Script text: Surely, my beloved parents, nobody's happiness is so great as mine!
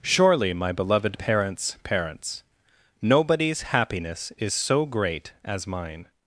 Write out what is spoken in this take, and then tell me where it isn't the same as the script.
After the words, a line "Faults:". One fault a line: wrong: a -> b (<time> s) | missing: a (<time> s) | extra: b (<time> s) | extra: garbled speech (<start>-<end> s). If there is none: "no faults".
Surely, my beloved parents parents, nobody's happiness is so great as mine!
Faults:
extra: parents (1.8 s)